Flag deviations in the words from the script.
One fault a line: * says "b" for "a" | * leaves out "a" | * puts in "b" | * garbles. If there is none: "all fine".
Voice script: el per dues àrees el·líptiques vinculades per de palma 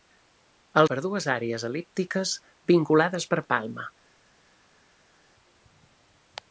all fine